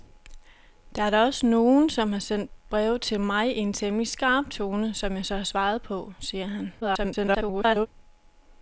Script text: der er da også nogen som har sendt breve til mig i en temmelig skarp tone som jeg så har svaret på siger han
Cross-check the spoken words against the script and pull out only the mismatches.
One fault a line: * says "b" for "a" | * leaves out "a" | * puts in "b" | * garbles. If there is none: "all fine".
* garbles